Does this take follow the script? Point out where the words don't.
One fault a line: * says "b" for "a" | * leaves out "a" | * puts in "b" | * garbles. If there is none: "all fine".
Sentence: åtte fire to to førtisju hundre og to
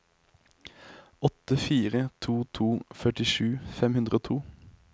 * puts in "fem"